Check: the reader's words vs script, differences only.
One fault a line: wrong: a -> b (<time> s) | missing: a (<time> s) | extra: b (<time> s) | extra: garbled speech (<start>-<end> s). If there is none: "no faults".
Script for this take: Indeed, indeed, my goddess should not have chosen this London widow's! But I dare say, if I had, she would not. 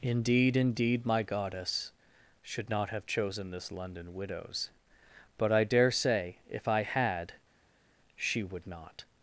no faults